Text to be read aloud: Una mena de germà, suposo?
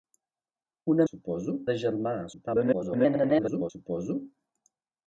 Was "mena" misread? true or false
true